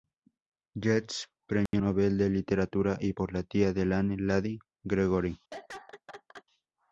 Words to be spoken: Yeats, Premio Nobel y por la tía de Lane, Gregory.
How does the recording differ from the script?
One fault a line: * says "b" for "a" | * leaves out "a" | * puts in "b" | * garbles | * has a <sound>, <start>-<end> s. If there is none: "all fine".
* has a dropout, 1.7-1.7 s
* puts in "de Literatura"
* puts in "Lady"
* has a laugh, 5.5-6.4 s